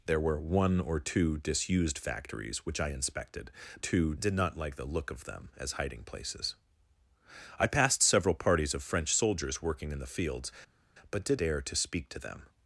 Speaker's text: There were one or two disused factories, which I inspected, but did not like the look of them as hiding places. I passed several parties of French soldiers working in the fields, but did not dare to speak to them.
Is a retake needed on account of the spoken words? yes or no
yes